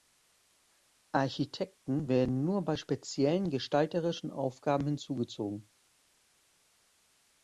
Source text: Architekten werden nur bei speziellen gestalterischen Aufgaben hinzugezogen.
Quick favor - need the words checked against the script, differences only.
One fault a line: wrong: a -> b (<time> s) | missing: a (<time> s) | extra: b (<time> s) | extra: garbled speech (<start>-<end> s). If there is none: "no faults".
no faults